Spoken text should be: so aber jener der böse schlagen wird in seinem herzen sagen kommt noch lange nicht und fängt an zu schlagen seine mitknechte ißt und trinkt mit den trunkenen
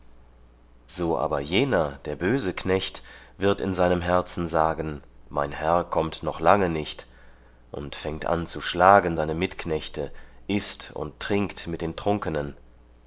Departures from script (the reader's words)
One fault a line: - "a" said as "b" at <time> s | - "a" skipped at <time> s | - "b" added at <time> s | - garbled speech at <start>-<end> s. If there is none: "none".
- "schlagen" said as "knecht" at 2.5 s
- "mein herr" added at 5.3 s